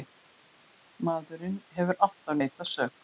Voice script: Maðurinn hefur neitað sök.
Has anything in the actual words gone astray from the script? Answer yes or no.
yes